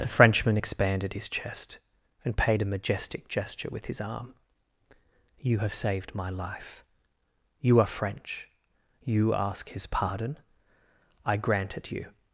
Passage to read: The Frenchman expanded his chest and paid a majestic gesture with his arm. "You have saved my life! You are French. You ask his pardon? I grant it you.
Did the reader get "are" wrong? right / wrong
right